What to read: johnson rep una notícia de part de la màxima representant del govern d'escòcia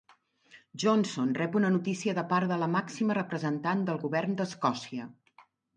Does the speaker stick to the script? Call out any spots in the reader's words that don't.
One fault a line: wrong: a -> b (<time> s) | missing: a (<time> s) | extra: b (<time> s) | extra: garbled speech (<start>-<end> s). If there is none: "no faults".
no faults